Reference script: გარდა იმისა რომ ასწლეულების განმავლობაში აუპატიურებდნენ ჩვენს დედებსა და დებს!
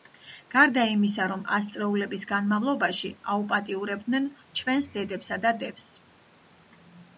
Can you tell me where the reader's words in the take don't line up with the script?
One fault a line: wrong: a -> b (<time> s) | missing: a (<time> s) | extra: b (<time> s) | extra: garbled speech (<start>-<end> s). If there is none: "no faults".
no faults